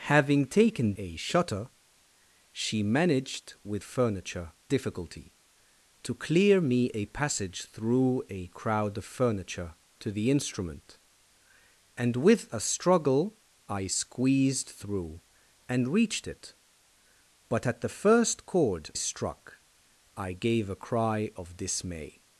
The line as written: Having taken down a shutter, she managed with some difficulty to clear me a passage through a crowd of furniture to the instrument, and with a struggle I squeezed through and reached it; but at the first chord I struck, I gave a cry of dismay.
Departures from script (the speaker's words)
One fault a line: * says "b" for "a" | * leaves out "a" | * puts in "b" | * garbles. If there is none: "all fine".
* leaves out "down"
* says "furniture" for "some"
* leaves out "I"